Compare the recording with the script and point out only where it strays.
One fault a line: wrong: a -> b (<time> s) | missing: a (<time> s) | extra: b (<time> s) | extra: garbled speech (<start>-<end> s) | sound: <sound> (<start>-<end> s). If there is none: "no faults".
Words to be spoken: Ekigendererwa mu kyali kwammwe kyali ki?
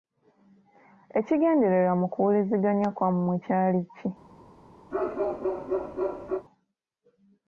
wrong: kyali -> kuwuliziganya (2.1 s)
sound: bark (4.9-6.5 s)